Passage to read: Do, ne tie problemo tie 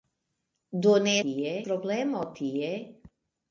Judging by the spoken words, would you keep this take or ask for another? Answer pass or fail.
pass